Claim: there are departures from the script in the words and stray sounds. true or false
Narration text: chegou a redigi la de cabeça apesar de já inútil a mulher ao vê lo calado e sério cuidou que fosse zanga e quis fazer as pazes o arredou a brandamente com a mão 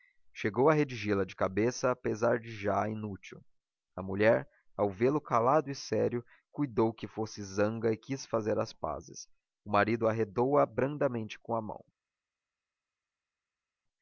true